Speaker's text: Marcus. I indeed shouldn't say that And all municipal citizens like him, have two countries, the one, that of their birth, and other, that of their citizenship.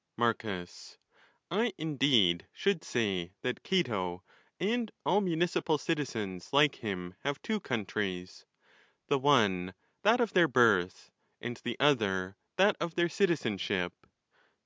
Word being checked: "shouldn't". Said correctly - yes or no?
no